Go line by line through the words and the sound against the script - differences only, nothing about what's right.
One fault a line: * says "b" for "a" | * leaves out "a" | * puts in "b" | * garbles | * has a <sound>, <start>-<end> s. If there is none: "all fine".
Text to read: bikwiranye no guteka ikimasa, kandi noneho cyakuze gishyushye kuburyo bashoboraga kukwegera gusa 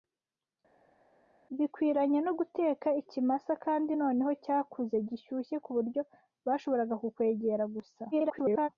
* garbles